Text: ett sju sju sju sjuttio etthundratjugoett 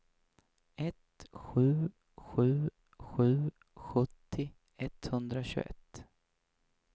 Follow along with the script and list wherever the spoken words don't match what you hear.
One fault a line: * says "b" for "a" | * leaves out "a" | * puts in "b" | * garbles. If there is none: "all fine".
all fine